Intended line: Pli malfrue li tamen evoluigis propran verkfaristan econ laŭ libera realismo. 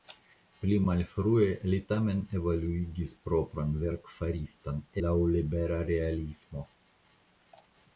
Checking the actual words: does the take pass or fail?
fail